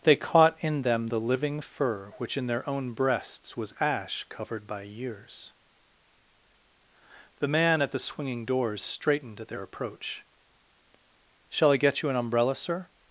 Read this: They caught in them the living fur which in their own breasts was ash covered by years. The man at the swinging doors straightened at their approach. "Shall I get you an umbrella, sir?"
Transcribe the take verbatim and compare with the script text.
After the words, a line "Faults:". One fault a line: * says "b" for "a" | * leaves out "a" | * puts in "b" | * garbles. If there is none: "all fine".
They caught in them the living fur which in their own breasts was ash covered by years. The man at the swinging doors straightened at their approach. "Shall I get you an umbrella, sir?"
Faults:
all fine